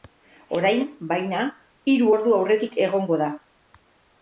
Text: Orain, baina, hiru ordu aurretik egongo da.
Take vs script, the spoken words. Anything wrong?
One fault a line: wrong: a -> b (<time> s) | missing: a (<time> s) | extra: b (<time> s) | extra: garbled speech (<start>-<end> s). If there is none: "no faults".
no faults